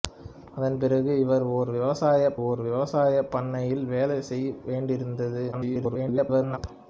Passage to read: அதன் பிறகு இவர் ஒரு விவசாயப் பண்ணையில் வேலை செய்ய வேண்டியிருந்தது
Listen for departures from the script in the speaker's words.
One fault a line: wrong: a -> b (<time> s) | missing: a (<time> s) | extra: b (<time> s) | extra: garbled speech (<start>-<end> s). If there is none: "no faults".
extra: ஒரு விவசாயப் (2.4 s)
extra: garbled speech (5.5-6.6 s)